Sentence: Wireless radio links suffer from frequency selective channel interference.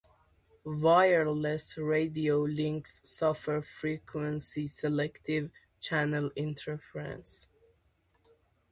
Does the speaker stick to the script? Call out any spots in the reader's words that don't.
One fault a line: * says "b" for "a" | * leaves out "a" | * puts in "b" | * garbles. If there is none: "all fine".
* leaves out "from"